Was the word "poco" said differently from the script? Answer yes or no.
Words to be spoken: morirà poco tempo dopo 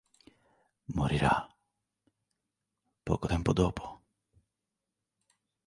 no